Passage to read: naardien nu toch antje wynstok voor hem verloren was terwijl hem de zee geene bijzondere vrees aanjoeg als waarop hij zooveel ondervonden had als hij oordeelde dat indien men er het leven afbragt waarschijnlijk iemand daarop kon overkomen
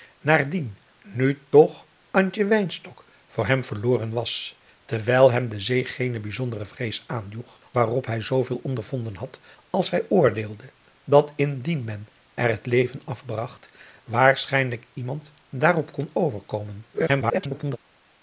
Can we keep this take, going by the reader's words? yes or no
no